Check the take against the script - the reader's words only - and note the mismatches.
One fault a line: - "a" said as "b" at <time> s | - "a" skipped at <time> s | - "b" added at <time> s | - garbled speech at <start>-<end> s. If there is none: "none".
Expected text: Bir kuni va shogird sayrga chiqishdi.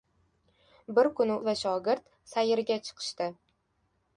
none